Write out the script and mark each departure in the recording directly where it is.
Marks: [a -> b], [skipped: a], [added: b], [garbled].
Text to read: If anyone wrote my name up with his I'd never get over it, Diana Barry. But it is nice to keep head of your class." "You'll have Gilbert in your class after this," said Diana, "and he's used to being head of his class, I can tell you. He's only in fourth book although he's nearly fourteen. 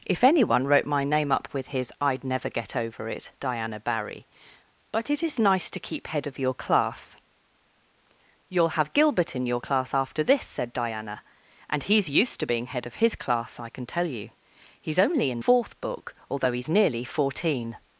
If anyone wrote my name up with his I'd never get over it, Diana Barry. But it is nice to keep head of your class." "You'll have Gilbert in your class after this," said Diana, "and he's used to being head of his class, I can tell you. He's only in fourth book although he's nearly fourteen.